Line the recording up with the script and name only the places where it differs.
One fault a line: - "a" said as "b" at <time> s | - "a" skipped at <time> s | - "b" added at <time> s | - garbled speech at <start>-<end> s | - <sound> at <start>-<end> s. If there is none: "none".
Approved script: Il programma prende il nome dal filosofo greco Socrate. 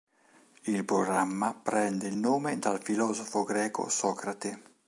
none